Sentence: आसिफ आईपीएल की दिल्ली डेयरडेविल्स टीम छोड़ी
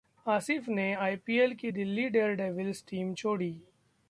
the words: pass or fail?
fail